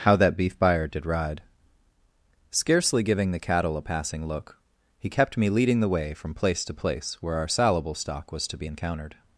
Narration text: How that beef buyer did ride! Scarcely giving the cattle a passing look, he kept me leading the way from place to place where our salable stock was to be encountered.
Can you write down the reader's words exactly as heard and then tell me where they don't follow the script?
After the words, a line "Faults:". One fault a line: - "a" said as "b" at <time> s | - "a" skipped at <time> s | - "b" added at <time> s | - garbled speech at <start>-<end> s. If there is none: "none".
How that beef buyer did ride! Scarcely giving the cattle a passing look, he kept me leading the way from place to place where our salable stock was to be encountered.
Faults:
none